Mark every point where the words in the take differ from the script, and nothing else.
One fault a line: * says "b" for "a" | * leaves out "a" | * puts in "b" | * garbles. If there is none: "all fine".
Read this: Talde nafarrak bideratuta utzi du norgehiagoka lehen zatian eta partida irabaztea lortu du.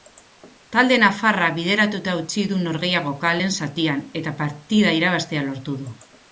all fine